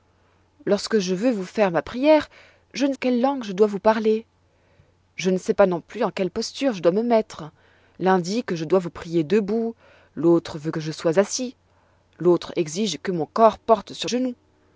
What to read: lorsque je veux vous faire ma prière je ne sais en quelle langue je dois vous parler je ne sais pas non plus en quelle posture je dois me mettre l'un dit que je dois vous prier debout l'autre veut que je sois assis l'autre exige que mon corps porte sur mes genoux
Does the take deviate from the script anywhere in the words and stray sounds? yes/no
yes